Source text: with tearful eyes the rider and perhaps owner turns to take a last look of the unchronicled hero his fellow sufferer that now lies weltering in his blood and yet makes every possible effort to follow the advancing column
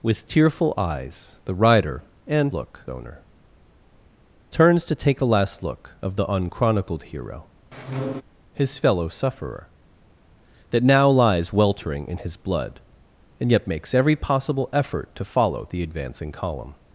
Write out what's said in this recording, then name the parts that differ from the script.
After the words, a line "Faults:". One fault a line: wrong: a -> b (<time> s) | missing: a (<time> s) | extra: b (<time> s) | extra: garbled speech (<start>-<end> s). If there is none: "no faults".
with tearful eyes the rider and look owner turns to take a last look of the unchronicled hero his fellow sufferer that now lies weltering in his blood and yet makes every possible effort to follow the advancing column
Faults:
wrong: perhaps -> look (2.5 s)